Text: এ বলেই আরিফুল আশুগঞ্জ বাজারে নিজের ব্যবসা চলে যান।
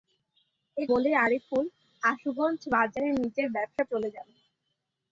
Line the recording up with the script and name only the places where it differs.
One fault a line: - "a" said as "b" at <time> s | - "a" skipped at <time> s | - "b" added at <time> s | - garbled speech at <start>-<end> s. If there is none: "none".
none